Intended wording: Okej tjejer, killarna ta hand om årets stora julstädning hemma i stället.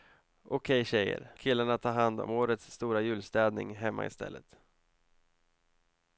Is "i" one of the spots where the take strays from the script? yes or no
no